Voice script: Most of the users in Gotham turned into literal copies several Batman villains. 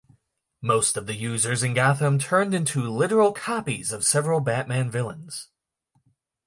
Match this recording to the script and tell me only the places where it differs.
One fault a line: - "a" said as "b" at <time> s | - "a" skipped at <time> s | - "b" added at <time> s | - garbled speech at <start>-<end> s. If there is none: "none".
- "of" added at 3.9 s